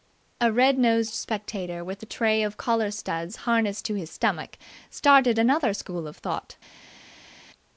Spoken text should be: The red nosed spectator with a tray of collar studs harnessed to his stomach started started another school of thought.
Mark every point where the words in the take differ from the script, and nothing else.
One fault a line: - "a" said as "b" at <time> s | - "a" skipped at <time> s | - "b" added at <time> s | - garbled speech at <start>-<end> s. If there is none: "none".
- "The" said as "A" at 0.4 s
- "started" skipped at 5.4 s